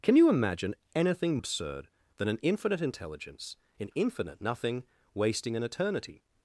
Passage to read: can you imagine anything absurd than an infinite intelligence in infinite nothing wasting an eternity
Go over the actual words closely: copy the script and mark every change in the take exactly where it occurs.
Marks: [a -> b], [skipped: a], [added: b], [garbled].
can you imagine anything absurd than an infinite intelligence in infinite nothing wasting an eternity